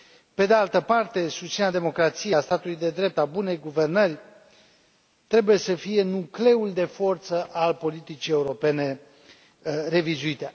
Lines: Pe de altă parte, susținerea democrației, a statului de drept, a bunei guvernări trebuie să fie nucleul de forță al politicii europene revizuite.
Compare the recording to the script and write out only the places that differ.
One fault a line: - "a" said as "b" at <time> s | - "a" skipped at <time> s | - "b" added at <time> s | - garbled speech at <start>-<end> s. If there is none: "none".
none